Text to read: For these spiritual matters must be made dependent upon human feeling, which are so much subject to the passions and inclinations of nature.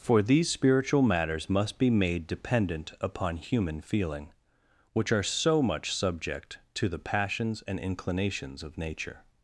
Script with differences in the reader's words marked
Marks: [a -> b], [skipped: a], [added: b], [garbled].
For these spiritual matters must be made dependent upon human feeling, which are so much subject to the passions and inclinations of nature.